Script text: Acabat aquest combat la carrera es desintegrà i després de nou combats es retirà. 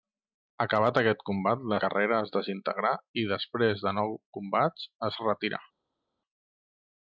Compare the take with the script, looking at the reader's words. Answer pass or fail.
pass